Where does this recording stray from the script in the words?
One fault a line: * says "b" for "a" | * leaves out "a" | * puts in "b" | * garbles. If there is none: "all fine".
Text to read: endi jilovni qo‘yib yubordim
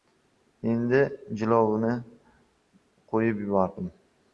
all fine